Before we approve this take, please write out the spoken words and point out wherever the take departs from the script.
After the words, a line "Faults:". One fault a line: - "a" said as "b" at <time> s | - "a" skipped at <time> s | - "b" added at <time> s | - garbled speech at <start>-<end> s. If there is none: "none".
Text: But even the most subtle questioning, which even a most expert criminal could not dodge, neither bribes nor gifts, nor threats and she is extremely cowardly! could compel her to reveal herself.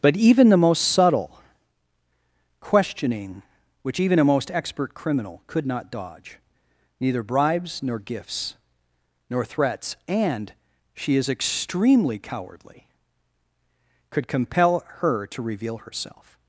But even the most subtle questioning, which even a most expert criminal could not dodge, neither bribes nor gifts, nor threats and she is extremely cowardly! could compel her to reveal herself.
Faults:
none